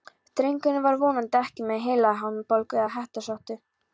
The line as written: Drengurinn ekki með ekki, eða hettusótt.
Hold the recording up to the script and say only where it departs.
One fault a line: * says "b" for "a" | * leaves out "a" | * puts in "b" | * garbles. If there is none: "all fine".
* puts in "var vonandi"
* says "heilahimnubólgu" for "ekki"